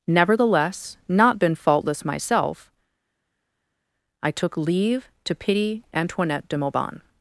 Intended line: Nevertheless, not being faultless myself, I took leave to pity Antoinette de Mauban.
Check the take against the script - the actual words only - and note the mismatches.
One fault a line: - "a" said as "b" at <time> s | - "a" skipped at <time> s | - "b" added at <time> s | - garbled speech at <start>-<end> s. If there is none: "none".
- "being" said as "been" at 1.4 s